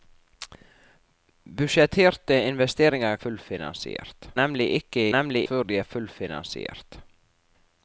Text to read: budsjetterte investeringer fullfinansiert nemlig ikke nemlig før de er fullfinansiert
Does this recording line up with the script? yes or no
yes